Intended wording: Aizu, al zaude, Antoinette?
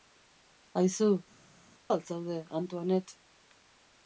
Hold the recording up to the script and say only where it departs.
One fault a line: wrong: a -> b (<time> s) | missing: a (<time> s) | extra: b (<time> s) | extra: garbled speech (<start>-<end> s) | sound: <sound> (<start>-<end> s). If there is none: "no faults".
no faults